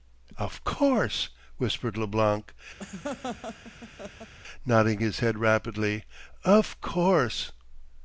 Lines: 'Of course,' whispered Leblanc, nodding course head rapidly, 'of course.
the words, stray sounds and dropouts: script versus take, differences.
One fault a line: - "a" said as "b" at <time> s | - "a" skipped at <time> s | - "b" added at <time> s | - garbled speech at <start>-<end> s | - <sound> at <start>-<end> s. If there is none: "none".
- laugh at 2.8-4.3 s
- "course" said as "his" at 5.0 s